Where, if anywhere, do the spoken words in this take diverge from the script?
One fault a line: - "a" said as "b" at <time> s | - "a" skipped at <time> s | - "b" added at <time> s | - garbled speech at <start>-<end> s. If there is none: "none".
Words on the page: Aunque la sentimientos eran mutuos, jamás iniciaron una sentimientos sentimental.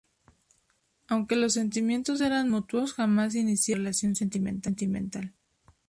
- "la" said as "los" at 1.4 s
- "sentimientos" said as "relación" at 3.9 s